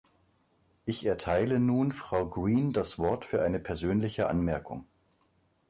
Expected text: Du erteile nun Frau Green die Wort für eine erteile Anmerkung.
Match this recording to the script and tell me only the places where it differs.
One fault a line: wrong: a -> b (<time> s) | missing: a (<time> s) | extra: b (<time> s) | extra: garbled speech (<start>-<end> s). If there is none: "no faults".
wrong: Du -> Ich (0.8 s)
wrong: die -> das (2.7 s)
wrong: erteile -> persönliche (3.6 s)